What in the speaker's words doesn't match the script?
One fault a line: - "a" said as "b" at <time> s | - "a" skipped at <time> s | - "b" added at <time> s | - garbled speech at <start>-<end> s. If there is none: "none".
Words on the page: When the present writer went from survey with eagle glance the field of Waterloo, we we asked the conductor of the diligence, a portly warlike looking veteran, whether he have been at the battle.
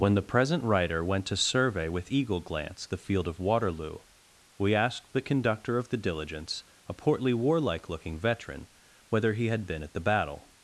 - "from" said as "to" at 1.3 s
- "we" skipped at 4.7 s
- "have" said as "had" at 9.5 s